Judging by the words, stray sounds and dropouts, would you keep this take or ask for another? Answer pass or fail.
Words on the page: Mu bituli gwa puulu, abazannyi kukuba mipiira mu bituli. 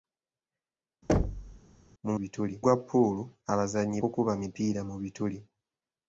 fail